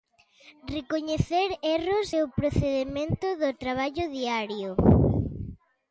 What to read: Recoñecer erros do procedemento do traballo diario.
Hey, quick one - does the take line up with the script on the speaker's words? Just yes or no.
yes